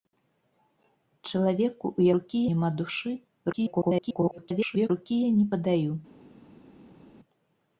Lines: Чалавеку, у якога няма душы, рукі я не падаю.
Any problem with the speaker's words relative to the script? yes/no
yes